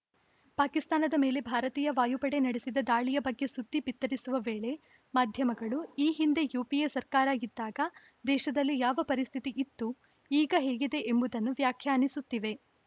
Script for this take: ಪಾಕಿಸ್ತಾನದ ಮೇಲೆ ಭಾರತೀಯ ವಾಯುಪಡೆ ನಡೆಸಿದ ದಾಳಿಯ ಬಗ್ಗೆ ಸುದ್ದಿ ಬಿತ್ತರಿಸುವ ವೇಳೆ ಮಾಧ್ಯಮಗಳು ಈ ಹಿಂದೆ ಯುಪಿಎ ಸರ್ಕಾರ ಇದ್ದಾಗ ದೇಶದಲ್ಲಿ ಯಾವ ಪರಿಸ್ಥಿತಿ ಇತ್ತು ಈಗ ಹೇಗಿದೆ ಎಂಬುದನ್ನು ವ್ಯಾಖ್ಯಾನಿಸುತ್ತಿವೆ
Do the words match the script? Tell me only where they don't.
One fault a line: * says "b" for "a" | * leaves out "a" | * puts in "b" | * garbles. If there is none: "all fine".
all fine